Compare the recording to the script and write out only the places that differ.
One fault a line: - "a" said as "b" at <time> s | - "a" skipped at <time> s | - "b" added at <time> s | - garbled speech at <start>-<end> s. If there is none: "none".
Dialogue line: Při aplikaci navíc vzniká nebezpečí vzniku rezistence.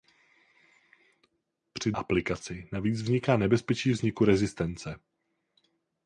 none